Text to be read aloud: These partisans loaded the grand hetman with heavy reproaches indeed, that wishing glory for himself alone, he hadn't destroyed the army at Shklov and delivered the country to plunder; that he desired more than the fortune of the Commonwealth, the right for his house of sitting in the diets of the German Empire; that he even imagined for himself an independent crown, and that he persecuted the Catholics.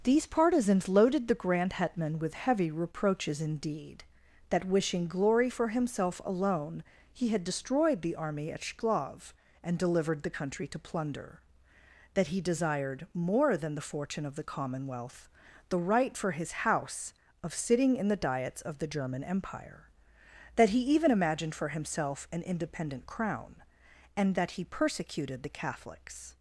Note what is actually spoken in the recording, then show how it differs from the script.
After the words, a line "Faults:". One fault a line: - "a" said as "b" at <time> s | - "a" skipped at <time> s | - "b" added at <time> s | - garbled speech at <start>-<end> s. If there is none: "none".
These partisans loaded the grand hetman with heavy reproaches indeed, that wishing glory for himself alone, he had destroyed the army at Shklov and delivered the country to plunder; that he desired more than the fortune of the Commonwealth, the right for his house of sitting in the diets of the German Empire; that he even imagined for himself an independent crown, and that he persecuted the Catholics.
Faults:
- "hadn't" said as "had" at 7.3 s